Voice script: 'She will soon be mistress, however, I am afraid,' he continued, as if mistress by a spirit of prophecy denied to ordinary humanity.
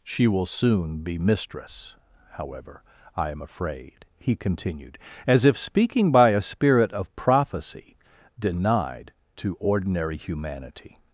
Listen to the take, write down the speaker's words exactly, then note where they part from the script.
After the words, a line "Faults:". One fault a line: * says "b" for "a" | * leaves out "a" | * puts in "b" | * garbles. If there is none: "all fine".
'She will soon be mistress, however, I am afraid,' he continued, as if speaking by a spirit of prophecy denied to ordinary humanity.
Faults:
* says "speaking" for "mistress"